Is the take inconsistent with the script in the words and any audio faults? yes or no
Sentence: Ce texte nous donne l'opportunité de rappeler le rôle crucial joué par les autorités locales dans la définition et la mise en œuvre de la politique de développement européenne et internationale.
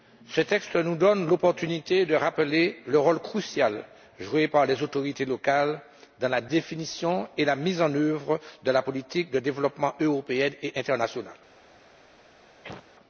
yes